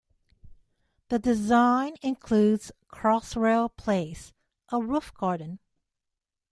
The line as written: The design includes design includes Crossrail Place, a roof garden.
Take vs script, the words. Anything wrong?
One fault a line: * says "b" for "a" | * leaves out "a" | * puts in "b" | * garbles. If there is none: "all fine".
* leaves out "design includes"